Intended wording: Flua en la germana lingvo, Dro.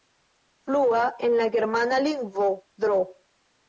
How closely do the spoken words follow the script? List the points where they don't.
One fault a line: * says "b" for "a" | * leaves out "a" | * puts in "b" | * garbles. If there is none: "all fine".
all fine